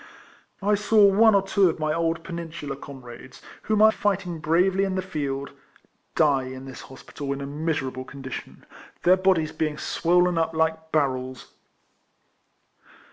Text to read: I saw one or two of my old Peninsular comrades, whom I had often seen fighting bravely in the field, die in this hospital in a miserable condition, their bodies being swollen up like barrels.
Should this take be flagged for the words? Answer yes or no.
yes